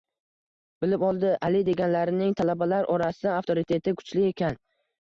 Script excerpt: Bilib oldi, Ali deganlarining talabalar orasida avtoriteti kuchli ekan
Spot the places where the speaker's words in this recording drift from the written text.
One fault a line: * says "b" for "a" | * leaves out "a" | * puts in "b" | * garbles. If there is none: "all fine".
all fine